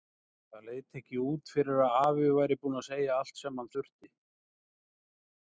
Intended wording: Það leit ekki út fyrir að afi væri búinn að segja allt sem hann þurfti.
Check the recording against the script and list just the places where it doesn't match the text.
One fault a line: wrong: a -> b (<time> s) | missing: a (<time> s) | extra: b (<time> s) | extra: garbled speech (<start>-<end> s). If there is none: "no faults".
no faults